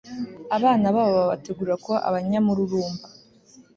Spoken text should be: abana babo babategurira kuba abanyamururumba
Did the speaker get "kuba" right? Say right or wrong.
right